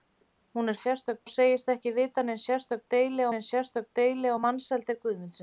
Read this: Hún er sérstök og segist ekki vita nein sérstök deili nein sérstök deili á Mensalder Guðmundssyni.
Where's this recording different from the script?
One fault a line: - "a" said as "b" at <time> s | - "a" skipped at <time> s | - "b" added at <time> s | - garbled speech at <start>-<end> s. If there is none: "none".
none